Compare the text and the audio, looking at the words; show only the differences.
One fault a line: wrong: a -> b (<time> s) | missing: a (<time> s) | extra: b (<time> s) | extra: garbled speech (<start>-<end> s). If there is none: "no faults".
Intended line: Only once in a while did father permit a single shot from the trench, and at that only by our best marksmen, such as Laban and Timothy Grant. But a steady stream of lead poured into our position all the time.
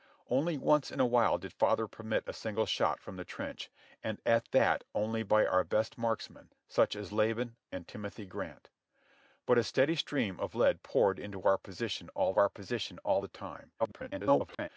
extra: our position all (12.3 s)
extra: garbled speech (13.8-14.7 s)